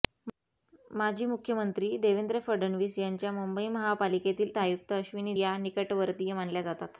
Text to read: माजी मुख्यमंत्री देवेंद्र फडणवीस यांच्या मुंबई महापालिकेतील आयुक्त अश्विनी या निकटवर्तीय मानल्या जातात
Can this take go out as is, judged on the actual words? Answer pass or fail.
pass